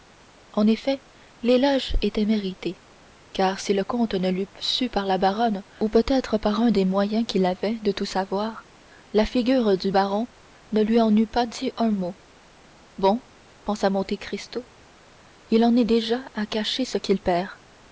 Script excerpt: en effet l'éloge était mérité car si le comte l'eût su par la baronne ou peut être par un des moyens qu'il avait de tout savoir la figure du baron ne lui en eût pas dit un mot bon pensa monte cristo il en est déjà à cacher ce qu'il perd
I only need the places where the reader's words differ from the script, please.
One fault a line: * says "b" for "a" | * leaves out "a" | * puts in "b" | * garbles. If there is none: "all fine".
* puts in "ne"